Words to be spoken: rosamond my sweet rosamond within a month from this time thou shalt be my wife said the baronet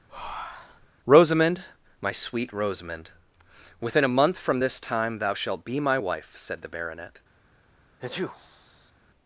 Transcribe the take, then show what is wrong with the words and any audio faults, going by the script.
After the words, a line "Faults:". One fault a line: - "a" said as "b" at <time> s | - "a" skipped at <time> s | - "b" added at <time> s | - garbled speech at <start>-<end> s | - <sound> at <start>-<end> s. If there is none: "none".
rosamond my sweet rosamond within a month from this time thou shalt be my wife said the baronet
Faults:
- breath at 0.1-0.9 s
- sneeze at 8.0-8.9 s